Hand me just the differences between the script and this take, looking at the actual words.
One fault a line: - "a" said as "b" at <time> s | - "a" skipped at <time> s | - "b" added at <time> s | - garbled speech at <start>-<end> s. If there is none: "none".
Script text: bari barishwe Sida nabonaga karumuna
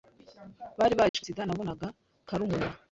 none